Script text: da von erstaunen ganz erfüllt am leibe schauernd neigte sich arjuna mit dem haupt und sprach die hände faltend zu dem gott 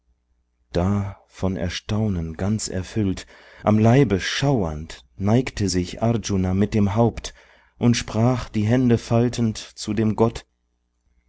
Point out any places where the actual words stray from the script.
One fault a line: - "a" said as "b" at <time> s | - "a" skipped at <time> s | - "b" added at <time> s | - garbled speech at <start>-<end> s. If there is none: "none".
none